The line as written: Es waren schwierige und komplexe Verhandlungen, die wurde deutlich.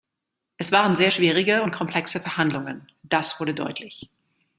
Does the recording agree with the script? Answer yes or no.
no